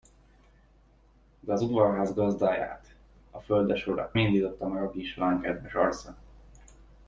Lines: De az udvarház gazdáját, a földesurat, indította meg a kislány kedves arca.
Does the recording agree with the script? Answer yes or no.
yes